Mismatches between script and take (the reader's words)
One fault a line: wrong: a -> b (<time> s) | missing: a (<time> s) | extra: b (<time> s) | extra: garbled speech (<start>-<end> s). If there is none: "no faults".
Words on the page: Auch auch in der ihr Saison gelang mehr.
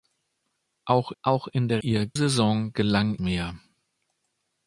no faults